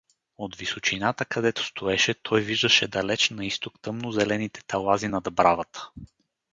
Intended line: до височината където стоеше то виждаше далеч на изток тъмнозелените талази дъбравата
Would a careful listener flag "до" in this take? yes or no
yes